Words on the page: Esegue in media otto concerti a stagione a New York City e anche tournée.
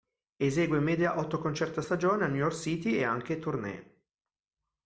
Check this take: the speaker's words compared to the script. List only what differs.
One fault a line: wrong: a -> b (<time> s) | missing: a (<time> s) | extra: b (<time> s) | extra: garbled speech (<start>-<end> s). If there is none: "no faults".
no faults